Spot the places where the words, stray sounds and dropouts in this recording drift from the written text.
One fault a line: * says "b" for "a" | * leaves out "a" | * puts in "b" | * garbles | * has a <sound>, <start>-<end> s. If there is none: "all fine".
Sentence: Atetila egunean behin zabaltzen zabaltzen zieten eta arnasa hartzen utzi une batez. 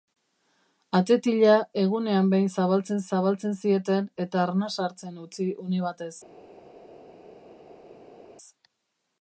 all fine